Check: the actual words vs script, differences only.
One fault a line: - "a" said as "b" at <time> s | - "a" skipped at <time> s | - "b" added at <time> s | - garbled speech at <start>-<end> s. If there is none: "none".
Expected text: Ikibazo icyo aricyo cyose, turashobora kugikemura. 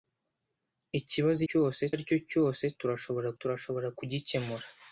- "icyo" said as "cyose" at 1.5 s
- "turashobora" added at 3.4 s